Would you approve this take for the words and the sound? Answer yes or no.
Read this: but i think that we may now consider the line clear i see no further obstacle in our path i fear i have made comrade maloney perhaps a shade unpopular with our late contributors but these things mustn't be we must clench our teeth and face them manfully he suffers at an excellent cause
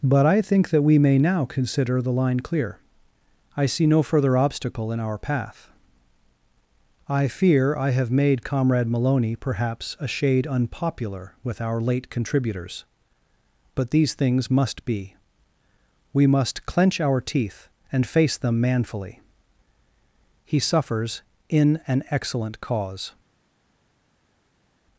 no